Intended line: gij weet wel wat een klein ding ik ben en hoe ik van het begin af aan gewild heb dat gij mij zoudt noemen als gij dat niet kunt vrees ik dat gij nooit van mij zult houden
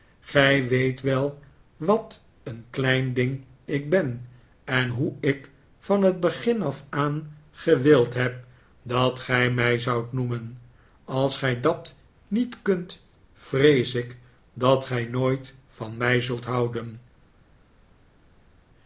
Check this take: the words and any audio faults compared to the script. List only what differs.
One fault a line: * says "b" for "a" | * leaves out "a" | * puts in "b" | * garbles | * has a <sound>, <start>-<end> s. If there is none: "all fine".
all fine